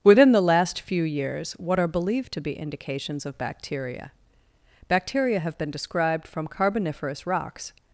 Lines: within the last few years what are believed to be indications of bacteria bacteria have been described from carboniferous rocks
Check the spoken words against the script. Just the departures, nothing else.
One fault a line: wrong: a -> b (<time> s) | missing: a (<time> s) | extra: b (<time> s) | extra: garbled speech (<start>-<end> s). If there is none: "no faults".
no faults